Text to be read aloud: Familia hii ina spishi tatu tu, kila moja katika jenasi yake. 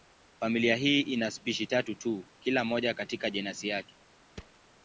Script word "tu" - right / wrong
right